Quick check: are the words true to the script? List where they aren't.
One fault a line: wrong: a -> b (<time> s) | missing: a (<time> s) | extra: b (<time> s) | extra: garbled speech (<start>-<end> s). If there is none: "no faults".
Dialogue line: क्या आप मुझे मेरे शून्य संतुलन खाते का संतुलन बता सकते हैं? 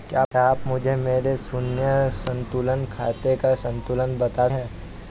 missing: सकते (4.5 s)